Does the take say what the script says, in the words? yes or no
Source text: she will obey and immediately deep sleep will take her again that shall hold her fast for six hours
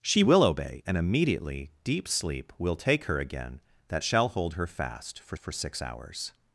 no